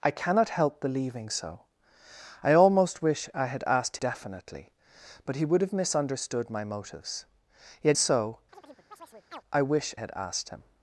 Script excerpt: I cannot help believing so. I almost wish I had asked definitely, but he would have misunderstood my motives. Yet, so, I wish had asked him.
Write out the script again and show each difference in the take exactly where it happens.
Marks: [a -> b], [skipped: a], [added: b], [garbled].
I cannot help believing so. I almost wish I had asked definitely, but he would have misunderstood my motives. Yet, so, I wish had asked him.